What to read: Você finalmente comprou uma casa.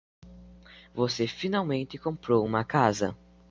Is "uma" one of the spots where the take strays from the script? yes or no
no